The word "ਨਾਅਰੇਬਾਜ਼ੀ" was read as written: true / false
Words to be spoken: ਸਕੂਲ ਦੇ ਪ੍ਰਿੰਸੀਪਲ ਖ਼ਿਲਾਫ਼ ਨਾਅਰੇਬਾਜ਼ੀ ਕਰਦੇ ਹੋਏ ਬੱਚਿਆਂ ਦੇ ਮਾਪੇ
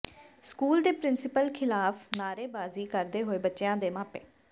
true